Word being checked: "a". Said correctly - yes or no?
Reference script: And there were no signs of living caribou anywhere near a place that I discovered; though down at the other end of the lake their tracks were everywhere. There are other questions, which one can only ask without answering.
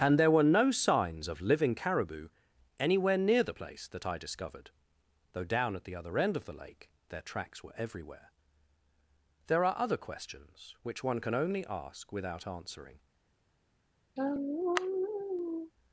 no